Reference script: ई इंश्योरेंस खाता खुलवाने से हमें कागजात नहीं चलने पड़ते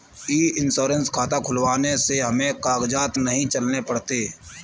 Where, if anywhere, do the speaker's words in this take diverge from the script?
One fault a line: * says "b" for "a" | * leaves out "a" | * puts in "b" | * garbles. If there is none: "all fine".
all fine